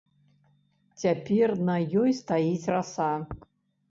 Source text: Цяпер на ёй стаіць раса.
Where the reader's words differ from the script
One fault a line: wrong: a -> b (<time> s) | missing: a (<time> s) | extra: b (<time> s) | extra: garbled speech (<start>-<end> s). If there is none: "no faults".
no faults